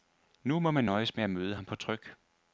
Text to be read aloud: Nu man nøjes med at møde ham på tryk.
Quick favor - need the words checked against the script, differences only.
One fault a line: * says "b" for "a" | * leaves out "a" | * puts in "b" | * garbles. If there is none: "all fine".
* puts in "må"